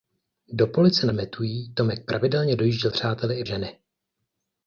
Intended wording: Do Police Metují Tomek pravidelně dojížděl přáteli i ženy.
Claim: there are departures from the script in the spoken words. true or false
false